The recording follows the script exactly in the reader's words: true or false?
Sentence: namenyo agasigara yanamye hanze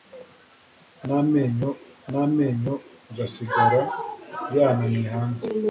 false